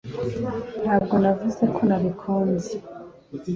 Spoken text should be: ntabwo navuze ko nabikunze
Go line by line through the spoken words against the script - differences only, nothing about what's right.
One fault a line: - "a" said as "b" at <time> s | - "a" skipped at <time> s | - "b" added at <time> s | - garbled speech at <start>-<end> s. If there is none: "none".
none